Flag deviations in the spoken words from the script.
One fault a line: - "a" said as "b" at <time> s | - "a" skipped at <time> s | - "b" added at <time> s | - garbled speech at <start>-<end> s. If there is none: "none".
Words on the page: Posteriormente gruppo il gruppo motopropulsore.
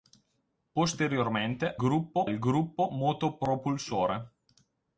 none